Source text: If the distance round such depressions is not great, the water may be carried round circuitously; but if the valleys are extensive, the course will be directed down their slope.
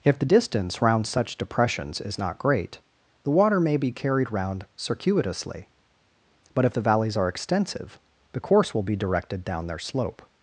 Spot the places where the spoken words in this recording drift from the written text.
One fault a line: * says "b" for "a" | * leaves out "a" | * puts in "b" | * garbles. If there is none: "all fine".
all fine